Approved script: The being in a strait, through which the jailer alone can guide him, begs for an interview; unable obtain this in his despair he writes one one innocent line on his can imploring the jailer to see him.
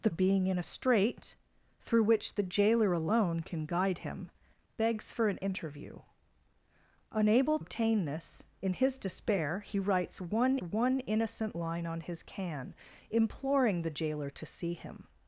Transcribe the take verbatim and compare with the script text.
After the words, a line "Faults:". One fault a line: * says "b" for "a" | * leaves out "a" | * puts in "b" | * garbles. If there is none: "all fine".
The being in a strait, through which the jailer alone can guide him, begs for an interview; unable obtain this in his despair he writes one one innocent line on his can imploring the jailer to see him.
Faults:
all fine